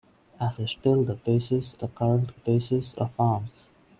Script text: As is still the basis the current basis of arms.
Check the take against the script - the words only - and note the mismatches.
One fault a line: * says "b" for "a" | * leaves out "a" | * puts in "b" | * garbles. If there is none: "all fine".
all fine